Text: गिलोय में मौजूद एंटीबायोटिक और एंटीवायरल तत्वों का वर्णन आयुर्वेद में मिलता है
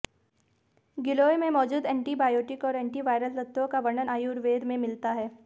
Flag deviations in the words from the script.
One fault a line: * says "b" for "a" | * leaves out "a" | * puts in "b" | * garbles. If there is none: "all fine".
all fine